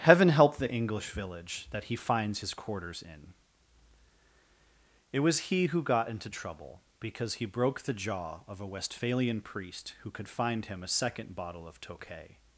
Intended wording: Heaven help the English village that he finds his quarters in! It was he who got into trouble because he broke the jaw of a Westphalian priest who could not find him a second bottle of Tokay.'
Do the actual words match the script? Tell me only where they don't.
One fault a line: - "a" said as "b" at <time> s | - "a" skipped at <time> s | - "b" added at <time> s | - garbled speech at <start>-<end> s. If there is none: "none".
- "not" skipped at 10.3 s